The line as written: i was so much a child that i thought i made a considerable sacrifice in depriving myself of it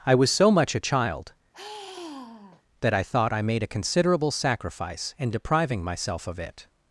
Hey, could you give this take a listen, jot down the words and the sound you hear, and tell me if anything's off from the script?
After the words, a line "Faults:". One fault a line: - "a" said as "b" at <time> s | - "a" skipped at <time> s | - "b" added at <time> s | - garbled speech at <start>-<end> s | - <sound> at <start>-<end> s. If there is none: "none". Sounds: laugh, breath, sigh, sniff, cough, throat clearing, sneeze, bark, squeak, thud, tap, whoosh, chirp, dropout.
i was so much a child that i thought i made a considerable sacrifice in depriving myself of it
Faults:
- sigh at 1.5-2.6 s